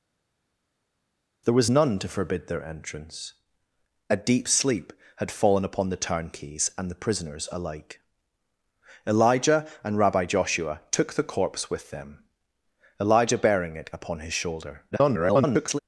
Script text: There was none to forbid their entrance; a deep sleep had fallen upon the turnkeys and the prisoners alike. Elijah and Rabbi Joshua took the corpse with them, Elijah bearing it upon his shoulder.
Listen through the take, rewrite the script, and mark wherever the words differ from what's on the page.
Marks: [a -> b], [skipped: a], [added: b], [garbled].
There was none to forbid their entrance; a deep sleep had fallen upon the turnkeys and the prisoners alike. Elijah and Rabbi Joshua took the corpse with them, Elijah bearing it upon his shoulder. [garbled]